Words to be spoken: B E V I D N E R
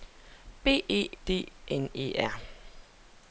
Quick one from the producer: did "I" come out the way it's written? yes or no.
no